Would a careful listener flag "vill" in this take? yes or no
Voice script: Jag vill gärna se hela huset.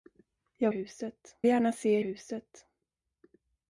yes